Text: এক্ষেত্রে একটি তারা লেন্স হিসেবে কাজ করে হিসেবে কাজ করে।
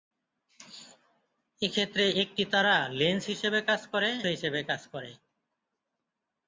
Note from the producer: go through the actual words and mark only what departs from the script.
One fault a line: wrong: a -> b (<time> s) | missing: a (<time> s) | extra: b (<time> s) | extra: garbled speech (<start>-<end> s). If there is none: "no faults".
no faults